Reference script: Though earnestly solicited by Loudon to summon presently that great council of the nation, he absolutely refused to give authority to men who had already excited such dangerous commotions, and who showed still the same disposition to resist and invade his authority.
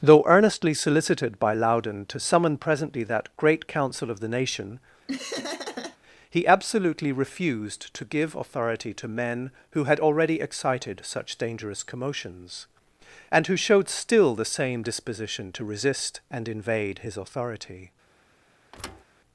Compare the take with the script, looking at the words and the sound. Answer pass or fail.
fail